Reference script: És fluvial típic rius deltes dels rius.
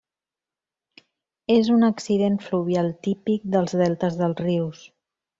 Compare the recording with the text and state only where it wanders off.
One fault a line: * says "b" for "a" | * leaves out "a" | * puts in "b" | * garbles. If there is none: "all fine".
* puts in "un accident"
* says "dels" for "rius"